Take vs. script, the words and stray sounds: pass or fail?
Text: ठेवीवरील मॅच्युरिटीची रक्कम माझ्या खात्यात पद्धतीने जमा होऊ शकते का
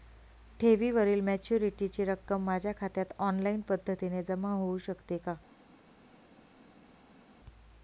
fail